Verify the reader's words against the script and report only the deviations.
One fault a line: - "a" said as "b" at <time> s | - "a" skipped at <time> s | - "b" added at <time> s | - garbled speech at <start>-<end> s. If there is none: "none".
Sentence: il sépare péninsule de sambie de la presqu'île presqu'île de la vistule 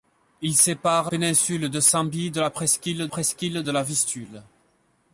none